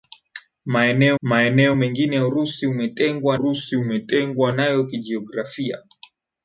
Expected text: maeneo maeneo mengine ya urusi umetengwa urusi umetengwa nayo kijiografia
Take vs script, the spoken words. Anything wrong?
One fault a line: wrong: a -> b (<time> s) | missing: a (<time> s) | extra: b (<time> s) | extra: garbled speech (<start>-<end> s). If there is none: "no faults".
no faults